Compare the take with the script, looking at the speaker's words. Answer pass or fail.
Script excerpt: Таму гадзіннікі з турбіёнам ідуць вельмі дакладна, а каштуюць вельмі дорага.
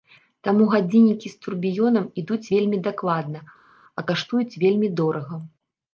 pass